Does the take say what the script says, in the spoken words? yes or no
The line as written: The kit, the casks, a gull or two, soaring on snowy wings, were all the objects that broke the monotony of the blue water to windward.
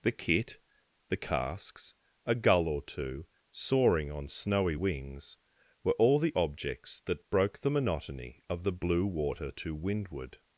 yes